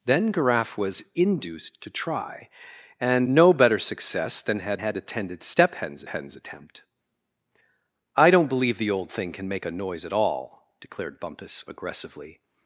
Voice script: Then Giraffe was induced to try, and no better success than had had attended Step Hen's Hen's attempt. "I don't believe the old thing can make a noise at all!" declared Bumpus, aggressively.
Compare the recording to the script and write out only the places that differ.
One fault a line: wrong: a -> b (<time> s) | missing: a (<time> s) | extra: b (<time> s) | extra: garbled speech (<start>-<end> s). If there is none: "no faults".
no faults